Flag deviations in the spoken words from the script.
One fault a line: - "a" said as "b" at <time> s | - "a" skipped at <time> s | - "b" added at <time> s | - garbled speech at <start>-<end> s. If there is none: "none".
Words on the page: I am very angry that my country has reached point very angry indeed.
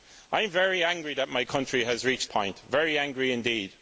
none